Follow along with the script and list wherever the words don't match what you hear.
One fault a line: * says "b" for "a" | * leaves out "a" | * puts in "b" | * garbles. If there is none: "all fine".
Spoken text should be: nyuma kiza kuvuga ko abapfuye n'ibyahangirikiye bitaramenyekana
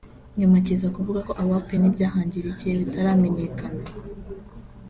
all fine